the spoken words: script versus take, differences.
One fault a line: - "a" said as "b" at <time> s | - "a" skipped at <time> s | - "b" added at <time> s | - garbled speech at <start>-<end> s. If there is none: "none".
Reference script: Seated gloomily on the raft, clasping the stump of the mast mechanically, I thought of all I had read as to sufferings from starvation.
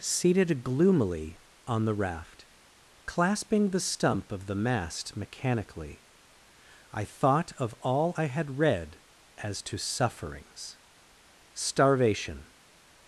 - "from" skipped at 10.8 s